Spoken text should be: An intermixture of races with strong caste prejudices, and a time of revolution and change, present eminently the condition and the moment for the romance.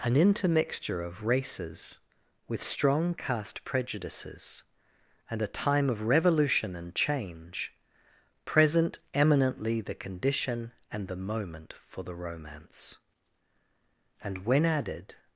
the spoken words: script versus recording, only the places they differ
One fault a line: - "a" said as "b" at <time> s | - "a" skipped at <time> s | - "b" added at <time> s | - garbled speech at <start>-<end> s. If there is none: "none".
- "And when added" added at 14.2 s